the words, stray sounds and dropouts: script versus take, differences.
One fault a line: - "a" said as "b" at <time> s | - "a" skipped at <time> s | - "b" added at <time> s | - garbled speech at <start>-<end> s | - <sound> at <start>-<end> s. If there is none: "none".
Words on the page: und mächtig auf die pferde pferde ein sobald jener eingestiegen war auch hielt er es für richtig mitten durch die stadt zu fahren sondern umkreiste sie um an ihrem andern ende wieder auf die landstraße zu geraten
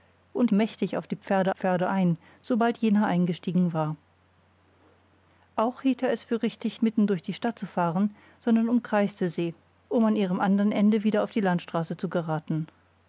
none